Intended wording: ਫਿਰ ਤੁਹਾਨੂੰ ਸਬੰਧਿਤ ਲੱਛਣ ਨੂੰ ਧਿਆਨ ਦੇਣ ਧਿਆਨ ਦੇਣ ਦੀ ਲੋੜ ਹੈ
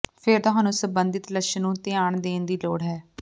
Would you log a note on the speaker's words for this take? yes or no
yes